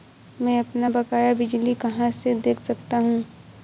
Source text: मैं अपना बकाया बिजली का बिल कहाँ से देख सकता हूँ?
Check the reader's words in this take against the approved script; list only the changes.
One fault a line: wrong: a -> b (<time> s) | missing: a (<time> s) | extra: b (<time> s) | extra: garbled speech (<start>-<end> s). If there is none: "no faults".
missing: का बिल (1.7 s)